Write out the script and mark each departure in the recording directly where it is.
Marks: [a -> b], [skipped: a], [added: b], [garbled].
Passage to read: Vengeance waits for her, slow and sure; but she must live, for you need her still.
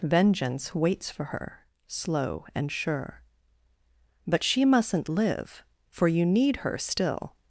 Vengeance waits for her, slow and sure; but she [must -> mustn't] live, for you need her still.